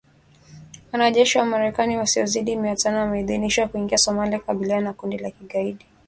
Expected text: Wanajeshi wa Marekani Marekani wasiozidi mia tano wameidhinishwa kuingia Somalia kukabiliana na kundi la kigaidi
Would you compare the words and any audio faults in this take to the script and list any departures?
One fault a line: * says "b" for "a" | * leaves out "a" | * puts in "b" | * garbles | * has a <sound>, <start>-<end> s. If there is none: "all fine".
* leaves out "Marekani"